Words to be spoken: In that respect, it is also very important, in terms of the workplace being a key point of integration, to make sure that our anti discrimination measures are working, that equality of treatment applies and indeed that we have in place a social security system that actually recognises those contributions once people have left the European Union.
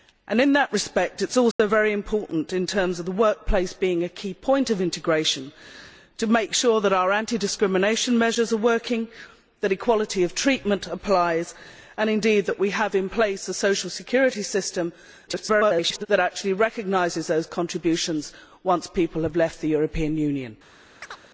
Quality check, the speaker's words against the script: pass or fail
fail